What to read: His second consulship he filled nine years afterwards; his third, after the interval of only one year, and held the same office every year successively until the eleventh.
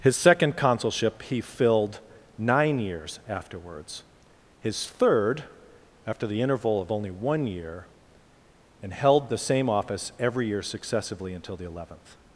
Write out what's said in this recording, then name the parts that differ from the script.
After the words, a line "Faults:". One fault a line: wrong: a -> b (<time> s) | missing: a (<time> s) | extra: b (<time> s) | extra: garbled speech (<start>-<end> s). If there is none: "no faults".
His second consulship he filled nine years afterwards; his third, after the interval of only one year, and held the same office every year successively until the eleventh.
Faults:
no faults